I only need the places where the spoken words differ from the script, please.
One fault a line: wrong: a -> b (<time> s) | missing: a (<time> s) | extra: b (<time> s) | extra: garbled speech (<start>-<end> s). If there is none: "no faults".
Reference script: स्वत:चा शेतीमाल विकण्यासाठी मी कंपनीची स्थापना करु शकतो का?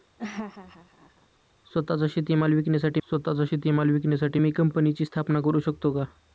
extra: स्वत:चा शेतीमाल विकण्यासाठी (3.1 s)